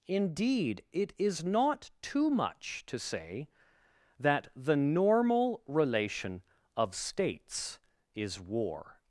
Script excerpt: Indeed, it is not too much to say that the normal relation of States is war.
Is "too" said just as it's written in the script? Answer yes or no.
yes